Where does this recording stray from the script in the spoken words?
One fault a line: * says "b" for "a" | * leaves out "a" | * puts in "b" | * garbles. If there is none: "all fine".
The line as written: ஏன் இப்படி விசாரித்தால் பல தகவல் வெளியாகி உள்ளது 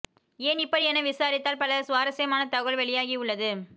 * puts in "என"
* puts in "சுவாரஸ்யமான"